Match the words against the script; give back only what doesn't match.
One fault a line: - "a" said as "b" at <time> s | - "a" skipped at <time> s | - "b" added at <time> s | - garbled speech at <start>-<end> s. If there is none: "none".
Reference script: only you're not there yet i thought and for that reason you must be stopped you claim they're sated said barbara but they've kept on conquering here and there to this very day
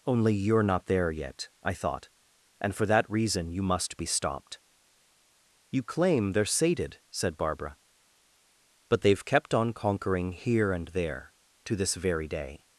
none